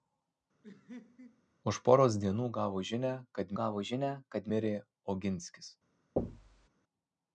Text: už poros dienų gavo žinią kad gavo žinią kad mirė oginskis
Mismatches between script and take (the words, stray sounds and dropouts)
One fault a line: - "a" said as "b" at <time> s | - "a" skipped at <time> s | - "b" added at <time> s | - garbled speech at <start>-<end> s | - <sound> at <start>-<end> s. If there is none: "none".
- laugh at 0.6-1.4 s
- thud at 6.2-6.7 s